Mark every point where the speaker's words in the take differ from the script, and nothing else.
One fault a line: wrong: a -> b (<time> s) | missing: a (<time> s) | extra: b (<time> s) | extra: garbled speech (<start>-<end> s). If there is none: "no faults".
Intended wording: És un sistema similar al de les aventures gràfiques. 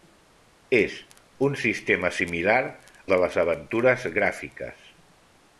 missing: al (2.6 s)